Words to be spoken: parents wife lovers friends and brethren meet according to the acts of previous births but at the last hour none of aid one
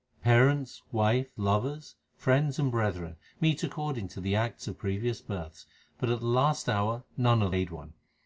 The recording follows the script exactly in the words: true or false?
true